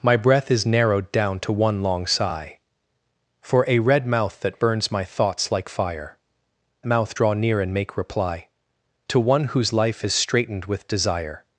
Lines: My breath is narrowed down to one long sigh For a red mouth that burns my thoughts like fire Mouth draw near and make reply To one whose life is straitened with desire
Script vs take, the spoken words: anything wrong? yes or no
no